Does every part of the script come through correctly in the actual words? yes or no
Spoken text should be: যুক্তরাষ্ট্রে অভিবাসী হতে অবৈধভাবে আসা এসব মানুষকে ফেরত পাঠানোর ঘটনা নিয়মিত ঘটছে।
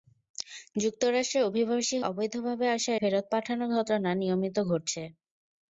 no